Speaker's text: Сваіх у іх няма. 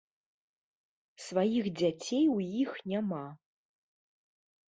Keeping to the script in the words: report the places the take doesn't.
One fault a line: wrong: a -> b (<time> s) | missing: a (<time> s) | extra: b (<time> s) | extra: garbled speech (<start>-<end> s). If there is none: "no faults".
extra: дзяцей (1.8 s)